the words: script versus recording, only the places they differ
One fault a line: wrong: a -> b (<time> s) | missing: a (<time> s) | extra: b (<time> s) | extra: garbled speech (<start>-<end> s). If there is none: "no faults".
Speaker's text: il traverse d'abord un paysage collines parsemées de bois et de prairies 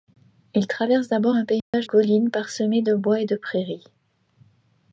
no faults